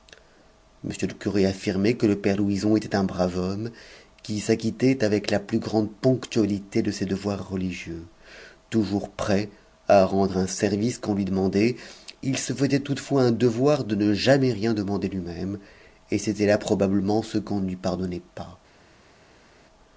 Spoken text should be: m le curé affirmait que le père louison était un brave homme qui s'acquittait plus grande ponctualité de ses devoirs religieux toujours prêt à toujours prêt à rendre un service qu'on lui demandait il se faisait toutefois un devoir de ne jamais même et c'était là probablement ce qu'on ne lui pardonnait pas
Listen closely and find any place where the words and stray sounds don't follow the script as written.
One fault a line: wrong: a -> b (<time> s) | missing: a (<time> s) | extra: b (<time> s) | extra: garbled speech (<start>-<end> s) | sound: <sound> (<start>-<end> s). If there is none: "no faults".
extra: avec la (5.0 s)
missing: toujours prêt à (10.1 s)
extra: rien demander lui (14.5 s)